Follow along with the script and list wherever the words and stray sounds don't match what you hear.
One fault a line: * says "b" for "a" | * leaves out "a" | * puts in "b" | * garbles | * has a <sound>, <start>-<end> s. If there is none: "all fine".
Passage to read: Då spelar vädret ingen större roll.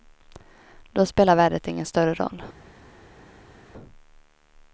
all fine